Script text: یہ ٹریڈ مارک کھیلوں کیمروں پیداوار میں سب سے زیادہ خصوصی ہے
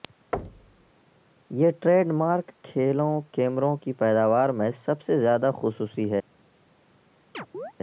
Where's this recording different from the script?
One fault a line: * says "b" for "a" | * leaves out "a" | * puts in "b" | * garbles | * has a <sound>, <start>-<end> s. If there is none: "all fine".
* has a thud, 0.3-0.9 s
* puts in "کی"
* has a chirp, 7.3-7.7 s